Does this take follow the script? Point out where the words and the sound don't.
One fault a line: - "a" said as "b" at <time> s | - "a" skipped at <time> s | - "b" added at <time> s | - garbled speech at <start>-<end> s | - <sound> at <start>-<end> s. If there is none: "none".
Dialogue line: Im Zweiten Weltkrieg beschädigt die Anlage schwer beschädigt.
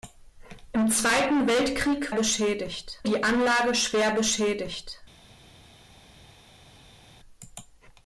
none